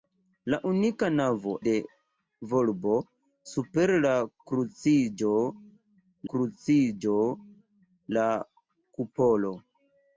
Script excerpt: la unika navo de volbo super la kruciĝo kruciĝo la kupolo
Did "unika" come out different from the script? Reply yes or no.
no